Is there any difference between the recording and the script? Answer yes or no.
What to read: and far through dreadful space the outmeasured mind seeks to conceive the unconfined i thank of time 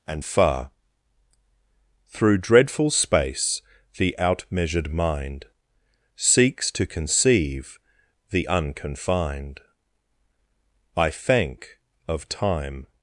no